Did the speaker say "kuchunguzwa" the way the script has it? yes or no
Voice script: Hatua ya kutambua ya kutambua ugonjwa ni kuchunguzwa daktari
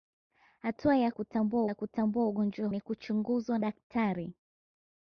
yes